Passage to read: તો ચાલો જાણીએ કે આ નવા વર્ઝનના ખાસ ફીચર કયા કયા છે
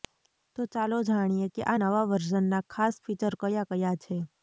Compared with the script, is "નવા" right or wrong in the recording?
right